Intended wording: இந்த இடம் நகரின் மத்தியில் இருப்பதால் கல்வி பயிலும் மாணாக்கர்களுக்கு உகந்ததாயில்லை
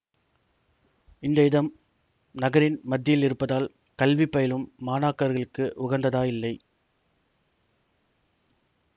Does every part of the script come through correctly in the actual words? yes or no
yes